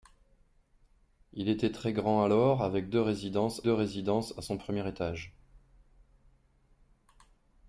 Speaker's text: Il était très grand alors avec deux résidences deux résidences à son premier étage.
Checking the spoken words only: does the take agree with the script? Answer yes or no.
yes